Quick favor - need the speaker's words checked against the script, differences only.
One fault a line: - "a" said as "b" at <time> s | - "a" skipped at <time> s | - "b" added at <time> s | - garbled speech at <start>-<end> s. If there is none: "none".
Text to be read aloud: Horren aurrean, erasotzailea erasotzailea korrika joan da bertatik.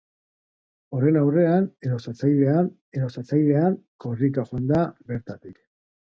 none